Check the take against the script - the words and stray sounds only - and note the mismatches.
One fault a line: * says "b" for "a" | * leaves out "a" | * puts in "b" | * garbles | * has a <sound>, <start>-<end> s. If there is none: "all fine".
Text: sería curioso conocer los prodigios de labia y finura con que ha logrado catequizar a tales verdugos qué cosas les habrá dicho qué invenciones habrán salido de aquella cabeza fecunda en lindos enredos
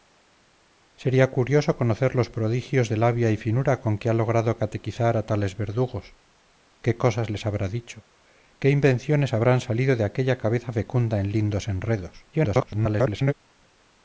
* garbles